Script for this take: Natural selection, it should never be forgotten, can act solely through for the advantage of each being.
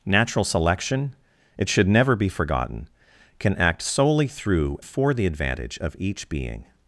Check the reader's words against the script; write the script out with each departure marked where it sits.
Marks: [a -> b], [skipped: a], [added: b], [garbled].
Natural selection, it should never be forgotten, can act solely through for the advantage of each being.